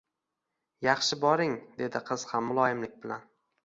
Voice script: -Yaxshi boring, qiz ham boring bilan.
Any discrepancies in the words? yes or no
yes